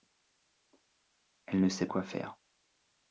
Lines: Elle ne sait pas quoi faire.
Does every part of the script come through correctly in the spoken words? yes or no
no